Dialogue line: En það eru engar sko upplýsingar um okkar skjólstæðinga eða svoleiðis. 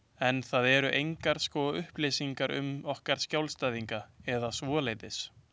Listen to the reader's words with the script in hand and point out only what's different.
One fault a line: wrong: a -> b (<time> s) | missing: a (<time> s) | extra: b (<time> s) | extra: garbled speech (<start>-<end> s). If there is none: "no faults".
no faults